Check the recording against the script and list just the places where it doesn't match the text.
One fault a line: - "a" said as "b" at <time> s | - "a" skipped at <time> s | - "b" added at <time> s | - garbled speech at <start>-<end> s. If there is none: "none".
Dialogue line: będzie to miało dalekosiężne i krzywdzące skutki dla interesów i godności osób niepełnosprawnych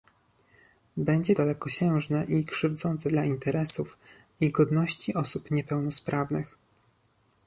- "to miało" skipped at 1.4 s
- "skutki" skipped at 3.1 s